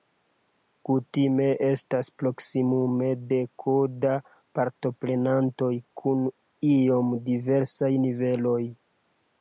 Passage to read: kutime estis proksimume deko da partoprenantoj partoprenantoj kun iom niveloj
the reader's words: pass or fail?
fail